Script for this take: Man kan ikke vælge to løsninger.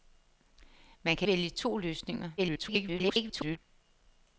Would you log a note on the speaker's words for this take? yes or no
yes